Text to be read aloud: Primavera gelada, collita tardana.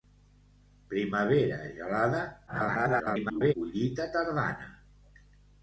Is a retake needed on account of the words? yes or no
yes